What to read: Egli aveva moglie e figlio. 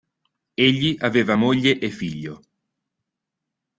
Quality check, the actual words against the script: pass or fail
pass